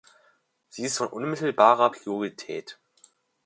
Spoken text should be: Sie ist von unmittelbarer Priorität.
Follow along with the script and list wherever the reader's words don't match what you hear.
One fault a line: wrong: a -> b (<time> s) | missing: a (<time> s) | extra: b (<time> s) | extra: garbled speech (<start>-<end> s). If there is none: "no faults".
no faults